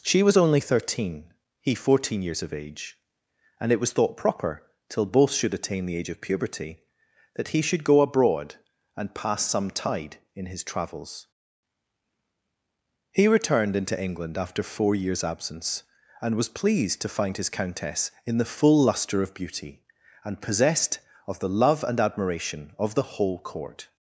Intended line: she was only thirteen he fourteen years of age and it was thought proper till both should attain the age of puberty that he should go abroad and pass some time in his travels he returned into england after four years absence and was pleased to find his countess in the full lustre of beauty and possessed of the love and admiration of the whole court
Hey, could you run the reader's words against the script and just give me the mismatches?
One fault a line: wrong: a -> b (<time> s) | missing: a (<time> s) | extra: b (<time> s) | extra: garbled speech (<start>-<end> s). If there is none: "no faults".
wrong: time -> tide (9.7 s)